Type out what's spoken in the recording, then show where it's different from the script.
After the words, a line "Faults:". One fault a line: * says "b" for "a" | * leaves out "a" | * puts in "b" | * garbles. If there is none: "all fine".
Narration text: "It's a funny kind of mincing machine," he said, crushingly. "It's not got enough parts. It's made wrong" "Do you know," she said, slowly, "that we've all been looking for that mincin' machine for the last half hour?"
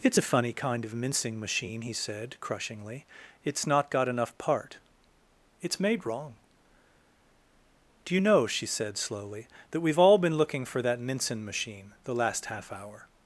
"It's a funny kind of mincing machine," he said, crushingly. "It's not got enough part. It's made wrong" "Do you know," she said, slowly, "that we've all been looking for that mincin' machine the last half hour?"
Faults:
* says "part" for "parts"
* leaves out "for"